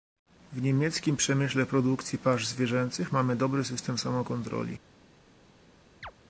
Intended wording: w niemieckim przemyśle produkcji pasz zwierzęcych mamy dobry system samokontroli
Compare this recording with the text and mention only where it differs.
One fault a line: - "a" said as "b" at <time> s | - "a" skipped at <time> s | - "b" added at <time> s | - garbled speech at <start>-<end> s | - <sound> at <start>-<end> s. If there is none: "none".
- chirp at 6.0-6.1 s